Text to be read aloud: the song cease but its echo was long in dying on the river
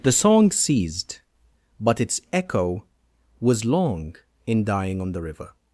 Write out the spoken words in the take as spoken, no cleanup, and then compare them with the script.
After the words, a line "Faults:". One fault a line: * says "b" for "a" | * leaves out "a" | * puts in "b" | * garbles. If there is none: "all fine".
the song ceased but its echo was long in dying on the river
Faults:
* says "ceased" for "cease"